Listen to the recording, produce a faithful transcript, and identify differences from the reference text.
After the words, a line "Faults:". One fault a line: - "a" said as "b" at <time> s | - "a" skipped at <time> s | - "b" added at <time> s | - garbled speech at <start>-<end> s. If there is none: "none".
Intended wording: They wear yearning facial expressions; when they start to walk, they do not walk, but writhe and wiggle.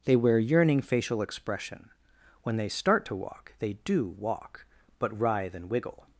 They wear yearning facial expression; when they start to walk, they do walk, but writhe and wiggle.
Faults:
- "expressions" said as "expression" at 1.2 s
- "not" skipped at 4.1 s